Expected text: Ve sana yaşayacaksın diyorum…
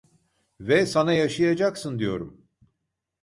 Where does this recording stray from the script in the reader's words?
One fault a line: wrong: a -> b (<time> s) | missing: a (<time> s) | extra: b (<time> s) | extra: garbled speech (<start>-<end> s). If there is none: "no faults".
no faults